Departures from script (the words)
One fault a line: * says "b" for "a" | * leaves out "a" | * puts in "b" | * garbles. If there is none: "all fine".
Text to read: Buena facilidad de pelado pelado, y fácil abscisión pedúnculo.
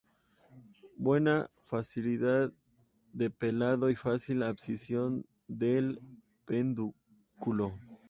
* leaves out "pelado"
* puts in "del"